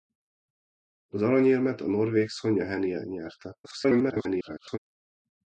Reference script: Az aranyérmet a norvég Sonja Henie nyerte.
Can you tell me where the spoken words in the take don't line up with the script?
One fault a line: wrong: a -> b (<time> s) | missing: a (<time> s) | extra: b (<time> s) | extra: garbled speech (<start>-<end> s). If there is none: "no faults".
extra: garbled speech (3.6-4.8 s)